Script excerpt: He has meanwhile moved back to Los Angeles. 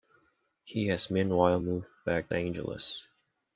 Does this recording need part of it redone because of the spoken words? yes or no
yes